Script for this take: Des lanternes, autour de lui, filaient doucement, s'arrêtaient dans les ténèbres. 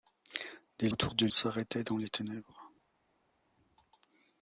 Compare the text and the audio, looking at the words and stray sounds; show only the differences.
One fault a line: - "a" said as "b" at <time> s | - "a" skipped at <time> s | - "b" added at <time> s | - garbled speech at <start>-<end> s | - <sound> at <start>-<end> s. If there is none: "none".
- "lanternes" skipped at 0.9 s
- "lui filaient doucement" skipped at 1.3 s